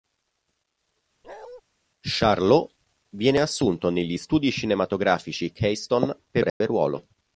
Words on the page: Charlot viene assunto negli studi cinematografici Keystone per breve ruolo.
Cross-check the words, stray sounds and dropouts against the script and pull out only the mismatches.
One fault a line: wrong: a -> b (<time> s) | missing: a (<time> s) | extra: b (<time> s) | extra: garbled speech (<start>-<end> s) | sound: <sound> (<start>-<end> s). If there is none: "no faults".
sound: bark (1.2-1.6 s)
sound: dropout (6.5-6.6 s)